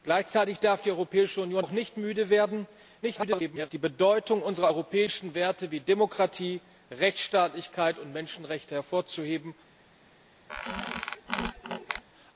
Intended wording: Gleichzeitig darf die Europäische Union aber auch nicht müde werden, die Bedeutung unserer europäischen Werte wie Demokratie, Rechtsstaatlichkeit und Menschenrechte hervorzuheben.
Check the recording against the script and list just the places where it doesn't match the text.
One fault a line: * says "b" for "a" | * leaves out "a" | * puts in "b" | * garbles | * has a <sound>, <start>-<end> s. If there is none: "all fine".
* leaves out "aber"
* garbles
* has a squeak, 10.5-12.0 s